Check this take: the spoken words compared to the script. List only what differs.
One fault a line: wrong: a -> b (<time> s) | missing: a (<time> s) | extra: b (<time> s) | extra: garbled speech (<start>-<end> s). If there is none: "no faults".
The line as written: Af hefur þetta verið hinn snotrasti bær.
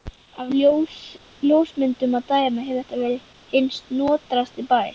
extra: ljósmyndum að dæma (1.5 s)